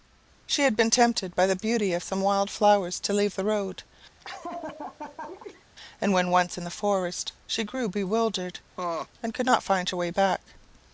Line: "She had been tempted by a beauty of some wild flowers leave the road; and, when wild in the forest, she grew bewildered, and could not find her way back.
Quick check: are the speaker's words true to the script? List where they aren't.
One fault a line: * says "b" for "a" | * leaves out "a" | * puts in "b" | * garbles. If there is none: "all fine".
* says "the" for "a"
* puts in "to"
* says "once" for "wild"